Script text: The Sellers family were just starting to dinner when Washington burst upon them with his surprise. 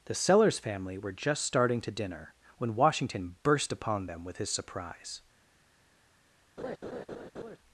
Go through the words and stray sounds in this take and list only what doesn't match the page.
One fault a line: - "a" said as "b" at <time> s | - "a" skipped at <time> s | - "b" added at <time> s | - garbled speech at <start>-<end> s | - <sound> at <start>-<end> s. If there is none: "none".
- laugh at 6.6-7.6 s